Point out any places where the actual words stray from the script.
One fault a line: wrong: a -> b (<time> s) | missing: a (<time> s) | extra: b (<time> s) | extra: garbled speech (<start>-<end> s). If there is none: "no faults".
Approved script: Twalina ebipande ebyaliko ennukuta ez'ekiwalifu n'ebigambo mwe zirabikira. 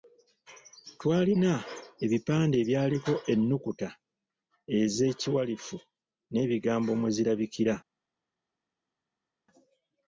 no faults